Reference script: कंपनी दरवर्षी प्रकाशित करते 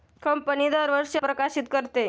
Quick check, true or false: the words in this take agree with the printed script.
true